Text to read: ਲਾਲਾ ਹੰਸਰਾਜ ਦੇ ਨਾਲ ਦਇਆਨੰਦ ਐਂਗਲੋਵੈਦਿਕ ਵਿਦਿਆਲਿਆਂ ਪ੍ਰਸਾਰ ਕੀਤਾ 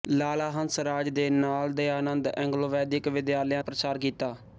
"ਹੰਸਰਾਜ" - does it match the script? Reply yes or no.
yes